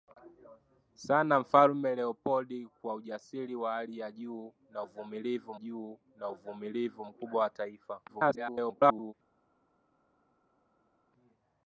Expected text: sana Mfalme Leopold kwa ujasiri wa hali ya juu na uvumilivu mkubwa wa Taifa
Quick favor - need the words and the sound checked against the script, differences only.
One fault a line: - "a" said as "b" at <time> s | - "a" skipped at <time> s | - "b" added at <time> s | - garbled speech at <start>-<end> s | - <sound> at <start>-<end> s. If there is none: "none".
- "juu na uvumilivu" added at 5.6 s
- garbled speech at 8.1-9.1 s